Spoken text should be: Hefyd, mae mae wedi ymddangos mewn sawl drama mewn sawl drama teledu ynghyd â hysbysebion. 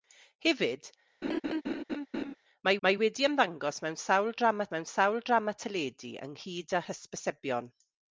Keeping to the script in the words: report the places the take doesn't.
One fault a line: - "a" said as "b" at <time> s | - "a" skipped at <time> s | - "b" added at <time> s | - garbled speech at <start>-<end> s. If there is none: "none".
none